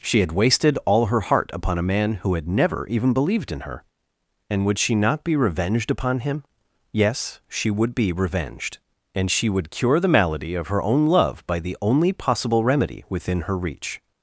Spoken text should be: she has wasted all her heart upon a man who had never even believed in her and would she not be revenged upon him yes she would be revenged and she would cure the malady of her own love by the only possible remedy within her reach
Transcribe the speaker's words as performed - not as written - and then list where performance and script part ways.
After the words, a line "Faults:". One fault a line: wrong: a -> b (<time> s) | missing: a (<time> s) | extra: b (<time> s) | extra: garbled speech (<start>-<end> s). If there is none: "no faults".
she had wasted all her heart upon a man who had never even believed in her and would she not be revenged upon him yes she would be revenged and she would cure the malady of her own love by the only possible remedy within her reach
Faults:
wrong: has -> had (0.2 s)